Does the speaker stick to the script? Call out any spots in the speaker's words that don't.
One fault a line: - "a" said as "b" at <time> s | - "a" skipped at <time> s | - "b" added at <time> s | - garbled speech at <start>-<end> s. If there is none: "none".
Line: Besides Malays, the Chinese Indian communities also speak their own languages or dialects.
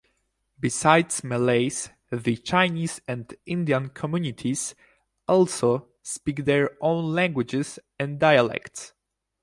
- "and" added at 3.1 s
- "or" said as "and" at 8.0 s